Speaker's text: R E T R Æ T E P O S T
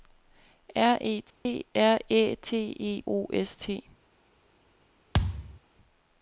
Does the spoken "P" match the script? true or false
false